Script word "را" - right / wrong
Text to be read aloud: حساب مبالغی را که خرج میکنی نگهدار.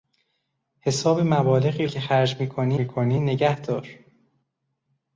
wrong